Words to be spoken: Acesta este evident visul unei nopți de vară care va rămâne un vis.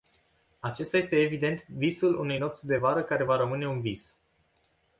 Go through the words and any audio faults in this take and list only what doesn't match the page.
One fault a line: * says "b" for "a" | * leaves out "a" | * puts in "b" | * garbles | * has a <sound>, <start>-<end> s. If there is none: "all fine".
all fine